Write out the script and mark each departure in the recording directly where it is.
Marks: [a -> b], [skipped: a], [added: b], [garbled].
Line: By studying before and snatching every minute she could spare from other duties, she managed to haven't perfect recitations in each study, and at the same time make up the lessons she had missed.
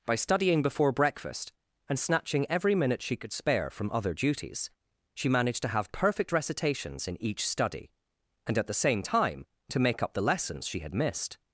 By studying before [added: breakfast] and snatching every minute she could spare from other duties, she managed to [haven't -> have] perfect recitations in each study, and at the same time [added: to] make up the lessons she had missed.